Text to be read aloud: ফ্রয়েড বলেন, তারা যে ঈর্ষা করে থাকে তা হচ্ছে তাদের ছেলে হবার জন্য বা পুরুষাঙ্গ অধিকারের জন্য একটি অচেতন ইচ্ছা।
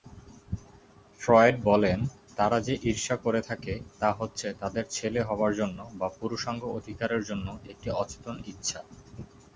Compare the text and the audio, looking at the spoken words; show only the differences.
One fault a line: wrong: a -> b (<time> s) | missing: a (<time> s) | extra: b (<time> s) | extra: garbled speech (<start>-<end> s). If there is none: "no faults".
no faults